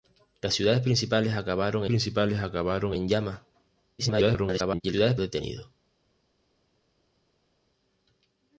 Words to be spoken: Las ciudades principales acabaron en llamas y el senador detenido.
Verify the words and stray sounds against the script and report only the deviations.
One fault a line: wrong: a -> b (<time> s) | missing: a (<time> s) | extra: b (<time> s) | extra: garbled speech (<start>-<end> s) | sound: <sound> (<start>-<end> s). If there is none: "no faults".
extra: principales acabaron (1.8 s)
extra: garbled speech (4.0-4.8 s)
wrong: senador -> ciudades (4.9 s)